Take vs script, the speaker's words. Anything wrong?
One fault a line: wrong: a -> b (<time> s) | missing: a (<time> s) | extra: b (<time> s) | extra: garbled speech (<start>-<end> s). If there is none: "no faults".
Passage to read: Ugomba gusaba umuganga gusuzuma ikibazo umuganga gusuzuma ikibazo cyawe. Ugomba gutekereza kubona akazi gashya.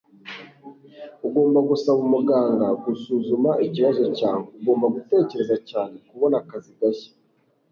missing: umuganga gusuzuma ikibazo (4.0 s)
extra: cyane (5.7 s)